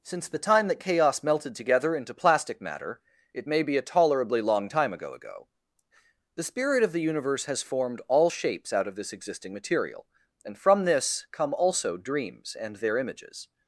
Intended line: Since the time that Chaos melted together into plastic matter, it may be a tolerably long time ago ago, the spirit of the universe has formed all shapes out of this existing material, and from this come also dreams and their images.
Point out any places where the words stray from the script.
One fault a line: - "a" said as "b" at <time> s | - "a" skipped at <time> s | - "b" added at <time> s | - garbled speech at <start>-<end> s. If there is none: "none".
none